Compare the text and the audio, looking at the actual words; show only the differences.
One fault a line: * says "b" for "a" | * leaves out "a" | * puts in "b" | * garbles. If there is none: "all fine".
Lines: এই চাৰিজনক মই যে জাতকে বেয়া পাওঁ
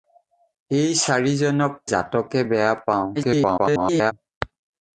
* leaves out "মই যে"
* garbles